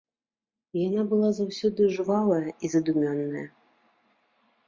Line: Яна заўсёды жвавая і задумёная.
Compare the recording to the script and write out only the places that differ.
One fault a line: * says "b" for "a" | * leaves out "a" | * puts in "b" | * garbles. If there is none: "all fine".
* puts in "была"